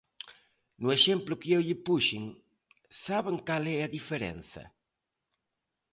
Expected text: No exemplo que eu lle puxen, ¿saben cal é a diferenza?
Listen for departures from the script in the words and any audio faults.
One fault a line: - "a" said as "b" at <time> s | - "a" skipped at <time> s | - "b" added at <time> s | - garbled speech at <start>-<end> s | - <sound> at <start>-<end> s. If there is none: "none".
none